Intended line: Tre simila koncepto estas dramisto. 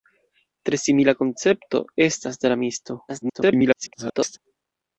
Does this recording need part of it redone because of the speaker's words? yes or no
yes